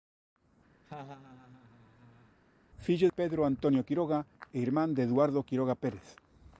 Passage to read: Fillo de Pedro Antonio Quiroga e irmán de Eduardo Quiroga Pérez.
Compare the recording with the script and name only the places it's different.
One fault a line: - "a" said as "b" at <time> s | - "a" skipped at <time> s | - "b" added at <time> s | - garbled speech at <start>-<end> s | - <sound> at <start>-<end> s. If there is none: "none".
- laugh at 0.8-2.4 s
- "de" skipped at 3.1 s